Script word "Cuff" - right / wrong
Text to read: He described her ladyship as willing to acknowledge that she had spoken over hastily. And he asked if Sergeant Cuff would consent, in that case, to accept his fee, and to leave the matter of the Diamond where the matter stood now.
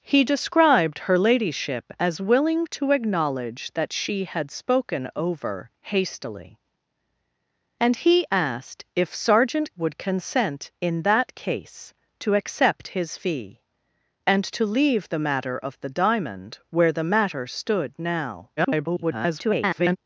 wrong